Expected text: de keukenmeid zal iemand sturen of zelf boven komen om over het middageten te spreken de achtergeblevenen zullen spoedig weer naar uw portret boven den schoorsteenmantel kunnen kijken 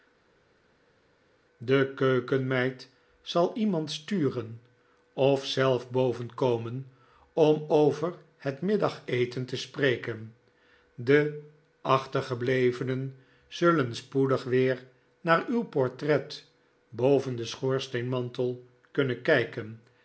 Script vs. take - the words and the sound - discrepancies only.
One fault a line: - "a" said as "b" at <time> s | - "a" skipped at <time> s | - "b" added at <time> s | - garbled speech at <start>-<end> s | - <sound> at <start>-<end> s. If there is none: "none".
none